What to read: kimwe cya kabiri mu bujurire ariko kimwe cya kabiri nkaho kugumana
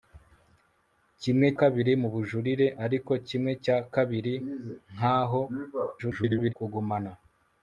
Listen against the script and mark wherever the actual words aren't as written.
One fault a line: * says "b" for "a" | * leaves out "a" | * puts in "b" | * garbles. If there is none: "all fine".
* leaves out "cya"
* garbles